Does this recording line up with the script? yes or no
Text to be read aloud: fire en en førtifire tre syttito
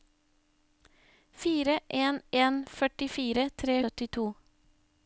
yes